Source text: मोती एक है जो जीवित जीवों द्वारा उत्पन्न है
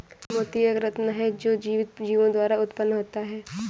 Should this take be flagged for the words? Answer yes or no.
yes